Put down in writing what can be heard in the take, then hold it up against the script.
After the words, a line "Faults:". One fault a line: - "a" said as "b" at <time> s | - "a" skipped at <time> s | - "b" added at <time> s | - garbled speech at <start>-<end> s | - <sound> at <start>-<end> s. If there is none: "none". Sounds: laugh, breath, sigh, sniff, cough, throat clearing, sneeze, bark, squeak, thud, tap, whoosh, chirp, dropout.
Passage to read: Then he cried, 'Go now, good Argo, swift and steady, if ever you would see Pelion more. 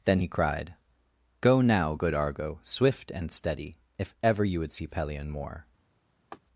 Then he cried, 'Go now, good Argo, swift and steady, if ever you would see Pelion more.
Faults:
- laugh at 6.3-6.4 s